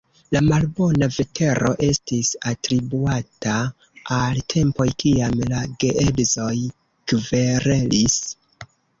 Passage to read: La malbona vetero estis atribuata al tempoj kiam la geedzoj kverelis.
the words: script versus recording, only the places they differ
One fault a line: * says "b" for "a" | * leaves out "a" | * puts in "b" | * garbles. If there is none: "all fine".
all fine